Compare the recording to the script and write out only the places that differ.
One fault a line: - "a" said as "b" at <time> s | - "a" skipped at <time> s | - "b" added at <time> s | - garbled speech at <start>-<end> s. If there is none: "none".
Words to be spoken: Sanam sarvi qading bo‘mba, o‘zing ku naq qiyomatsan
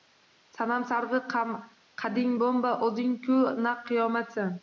none